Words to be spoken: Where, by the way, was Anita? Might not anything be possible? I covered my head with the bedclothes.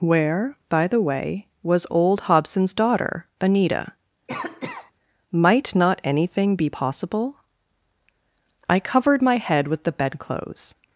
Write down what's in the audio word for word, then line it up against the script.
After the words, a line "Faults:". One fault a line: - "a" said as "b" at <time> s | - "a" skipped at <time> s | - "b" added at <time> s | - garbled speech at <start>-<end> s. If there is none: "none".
Where, by the way, was old Hobson's daughter, Anita? Might not anything be possible? I covered my head with the bedclothes.
Faults:
- "old Hobson's daughter" added at 1.9 s